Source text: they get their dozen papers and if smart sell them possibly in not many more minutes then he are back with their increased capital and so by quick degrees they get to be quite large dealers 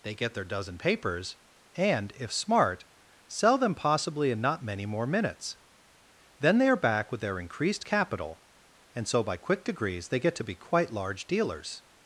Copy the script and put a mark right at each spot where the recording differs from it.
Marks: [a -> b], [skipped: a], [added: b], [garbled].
they get their dozen papers and if smart sell them possibly in not many more minutes then [he -> they] are back with their increased capital and so by quick degrees they get to be quite large dealers